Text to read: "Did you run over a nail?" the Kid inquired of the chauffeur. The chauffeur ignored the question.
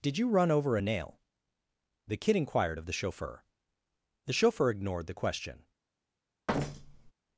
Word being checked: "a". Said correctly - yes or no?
yes